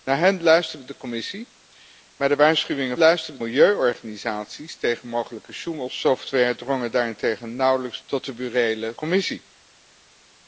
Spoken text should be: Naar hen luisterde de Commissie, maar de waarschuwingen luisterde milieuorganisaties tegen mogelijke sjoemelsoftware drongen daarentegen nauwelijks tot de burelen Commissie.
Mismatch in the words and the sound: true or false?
false